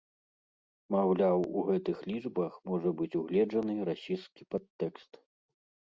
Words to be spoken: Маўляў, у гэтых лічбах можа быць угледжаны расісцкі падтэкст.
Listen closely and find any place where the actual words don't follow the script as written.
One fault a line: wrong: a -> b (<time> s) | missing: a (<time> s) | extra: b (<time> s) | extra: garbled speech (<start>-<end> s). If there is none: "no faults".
no faults